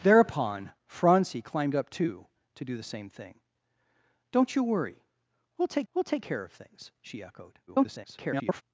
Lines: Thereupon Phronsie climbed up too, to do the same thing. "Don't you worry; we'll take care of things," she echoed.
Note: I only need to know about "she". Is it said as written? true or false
true